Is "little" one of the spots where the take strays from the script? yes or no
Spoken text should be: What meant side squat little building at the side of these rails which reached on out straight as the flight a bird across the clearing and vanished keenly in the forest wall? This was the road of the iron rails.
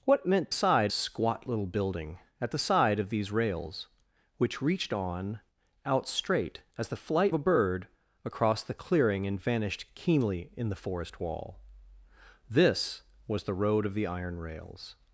no